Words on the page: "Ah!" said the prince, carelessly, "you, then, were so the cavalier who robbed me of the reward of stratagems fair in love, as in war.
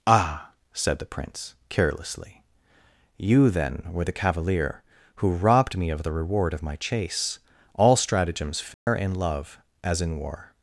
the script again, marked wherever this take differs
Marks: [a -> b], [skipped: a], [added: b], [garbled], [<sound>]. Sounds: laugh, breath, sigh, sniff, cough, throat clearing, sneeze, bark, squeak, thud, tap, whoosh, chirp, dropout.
"Ah!" said the prince, carelessly, "you, then, were [skipped: so] the cavalier who robbed me of the reward of [added: my chase All] stratagems fair [dropout] in love, as in war.